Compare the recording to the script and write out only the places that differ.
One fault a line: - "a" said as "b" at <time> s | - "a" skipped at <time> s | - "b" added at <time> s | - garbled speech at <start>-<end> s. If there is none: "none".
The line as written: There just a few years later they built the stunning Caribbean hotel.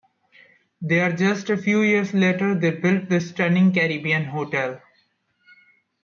none